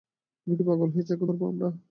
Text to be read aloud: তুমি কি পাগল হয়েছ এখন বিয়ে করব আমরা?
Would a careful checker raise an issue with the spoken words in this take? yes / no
yes